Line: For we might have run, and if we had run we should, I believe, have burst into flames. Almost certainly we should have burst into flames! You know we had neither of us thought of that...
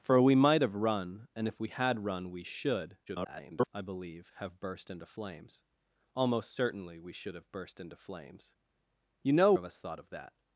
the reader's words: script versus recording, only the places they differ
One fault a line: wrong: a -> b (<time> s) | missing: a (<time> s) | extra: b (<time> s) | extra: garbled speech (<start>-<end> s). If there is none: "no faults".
extra: garbled speech (3.1-3.7 s)
missing: we had neither (9.5 s)